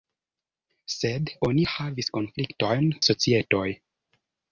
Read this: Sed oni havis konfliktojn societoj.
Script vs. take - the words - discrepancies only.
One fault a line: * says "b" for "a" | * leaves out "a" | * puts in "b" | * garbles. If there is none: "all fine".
all fine